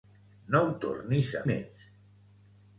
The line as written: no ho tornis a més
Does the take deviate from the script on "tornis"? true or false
false